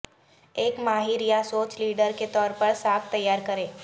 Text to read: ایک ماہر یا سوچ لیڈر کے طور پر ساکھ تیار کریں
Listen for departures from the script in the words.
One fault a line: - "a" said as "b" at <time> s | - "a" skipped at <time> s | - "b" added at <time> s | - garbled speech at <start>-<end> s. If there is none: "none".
none